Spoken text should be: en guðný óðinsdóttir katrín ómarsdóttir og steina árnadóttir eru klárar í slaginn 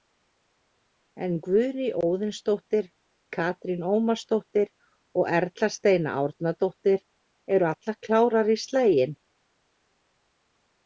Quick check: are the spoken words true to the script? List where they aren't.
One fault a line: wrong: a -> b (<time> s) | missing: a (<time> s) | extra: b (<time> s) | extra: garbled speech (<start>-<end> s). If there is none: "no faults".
extra: erla (5.4 s)
extra: allar (7.7 s)